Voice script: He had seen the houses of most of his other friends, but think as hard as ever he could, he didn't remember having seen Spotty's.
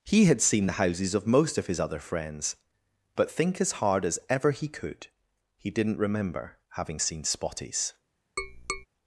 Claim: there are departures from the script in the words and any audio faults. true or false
true